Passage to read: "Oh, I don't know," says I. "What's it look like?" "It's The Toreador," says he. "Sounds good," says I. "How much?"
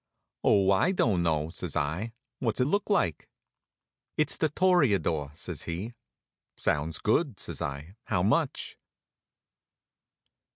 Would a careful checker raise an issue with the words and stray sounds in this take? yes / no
no